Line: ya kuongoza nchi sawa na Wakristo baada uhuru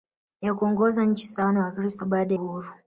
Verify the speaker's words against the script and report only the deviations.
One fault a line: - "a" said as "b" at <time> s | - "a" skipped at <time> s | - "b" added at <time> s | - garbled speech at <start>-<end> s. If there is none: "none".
none